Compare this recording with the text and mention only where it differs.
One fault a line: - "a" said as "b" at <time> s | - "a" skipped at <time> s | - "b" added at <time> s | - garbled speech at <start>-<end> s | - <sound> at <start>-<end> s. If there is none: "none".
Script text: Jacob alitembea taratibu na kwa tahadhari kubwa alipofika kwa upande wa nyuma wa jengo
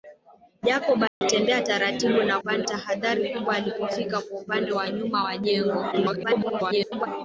- dropout at 1.1-1.2 s
- "kwa" said as "upande" at 2.4 s
- garbled speech at 5.9-7.1 s